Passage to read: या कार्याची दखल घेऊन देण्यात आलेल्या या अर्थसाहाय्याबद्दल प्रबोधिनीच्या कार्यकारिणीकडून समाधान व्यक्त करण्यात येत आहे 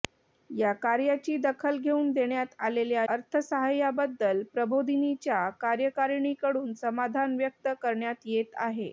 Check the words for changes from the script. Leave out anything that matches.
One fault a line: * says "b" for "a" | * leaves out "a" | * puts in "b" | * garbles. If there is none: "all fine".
* leaves out "या"